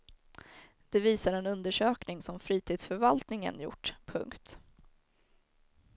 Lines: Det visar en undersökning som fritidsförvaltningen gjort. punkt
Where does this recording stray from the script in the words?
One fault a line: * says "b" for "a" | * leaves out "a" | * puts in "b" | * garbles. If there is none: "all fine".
all fine